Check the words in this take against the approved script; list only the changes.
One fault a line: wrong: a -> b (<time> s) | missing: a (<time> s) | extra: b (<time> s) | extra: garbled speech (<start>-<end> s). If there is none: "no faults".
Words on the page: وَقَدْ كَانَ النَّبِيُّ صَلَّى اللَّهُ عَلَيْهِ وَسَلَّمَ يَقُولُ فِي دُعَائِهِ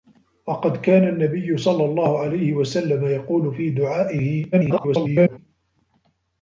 extra: garbled speech (4.5-5.4 s)